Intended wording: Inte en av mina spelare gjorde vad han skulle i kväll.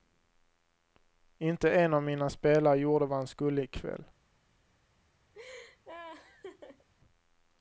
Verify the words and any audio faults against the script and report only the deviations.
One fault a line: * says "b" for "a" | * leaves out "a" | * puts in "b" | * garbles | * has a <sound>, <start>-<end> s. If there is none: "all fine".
* has a laugh, 5.3-6.9 s